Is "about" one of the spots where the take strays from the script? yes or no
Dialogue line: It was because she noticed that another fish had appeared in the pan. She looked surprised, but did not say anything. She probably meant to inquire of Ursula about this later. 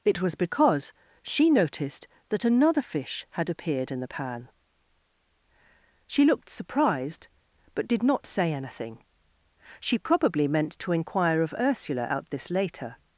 yes